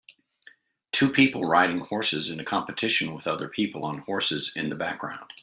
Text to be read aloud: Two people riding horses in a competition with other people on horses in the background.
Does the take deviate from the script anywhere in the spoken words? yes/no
no